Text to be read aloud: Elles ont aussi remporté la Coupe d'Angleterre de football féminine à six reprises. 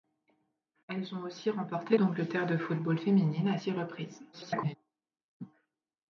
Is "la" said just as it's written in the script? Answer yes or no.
no